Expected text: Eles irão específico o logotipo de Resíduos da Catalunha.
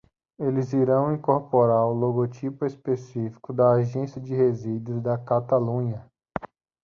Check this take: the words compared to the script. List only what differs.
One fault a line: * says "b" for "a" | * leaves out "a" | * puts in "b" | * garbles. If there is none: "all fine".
* says "incorporar" for "específico"
* puts in "específico da Agência"